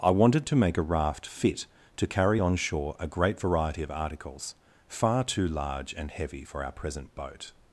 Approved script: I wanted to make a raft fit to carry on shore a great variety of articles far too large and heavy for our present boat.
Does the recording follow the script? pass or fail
pass